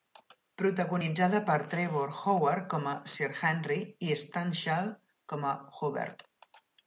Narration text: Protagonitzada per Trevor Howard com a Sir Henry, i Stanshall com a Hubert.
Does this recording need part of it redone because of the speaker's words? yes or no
no